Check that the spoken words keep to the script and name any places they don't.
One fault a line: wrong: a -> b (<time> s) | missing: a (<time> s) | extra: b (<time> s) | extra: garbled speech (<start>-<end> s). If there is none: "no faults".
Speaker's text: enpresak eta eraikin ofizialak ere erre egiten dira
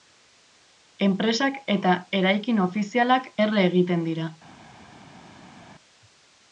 missing: ere (3.3 s)